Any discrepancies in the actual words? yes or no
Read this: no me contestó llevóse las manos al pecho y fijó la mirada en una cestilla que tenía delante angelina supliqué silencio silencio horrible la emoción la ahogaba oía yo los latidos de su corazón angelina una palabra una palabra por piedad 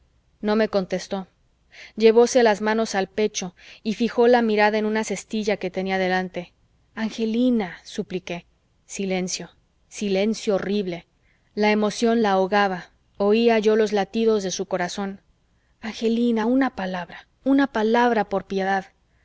no